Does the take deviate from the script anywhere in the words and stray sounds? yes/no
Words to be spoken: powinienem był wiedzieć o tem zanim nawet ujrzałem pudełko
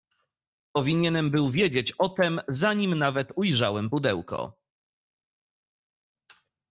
no